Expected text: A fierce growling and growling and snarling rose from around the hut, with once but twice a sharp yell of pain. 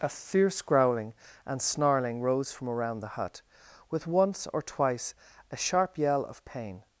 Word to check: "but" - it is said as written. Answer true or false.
false